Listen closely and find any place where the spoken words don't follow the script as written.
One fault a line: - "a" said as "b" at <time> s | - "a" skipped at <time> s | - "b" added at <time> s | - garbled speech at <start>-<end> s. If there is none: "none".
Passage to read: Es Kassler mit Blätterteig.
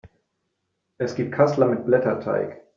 - "gibt" added at 1.1 s